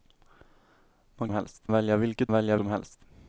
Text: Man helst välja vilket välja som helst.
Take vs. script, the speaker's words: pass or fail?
pass